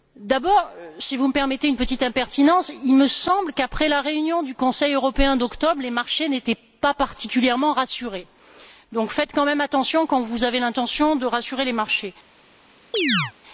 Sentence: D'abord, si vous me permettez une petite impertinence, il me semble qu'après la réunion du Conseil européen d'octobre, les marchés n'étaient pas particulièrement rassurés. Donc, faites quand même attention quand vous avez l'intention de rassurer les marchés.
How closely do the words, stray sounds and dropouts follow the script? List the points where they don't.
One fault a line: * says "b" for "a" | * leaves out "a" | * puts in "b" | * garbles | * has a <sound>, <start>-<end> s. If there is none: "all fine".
* has a chirp, 12.9-13.3 s